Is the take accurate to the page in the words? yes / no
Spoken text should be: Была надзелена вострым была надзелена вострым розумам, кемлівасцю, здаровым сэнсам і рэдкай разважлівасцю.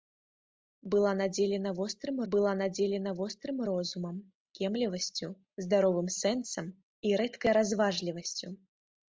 yes